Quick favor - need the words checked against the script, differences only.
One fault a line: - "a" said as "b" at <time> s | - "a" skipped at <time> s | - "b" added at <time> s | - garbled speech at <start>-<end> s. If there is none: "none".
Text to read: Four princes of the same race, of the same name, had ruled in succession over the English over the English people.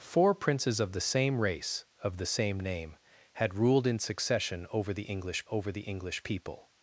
none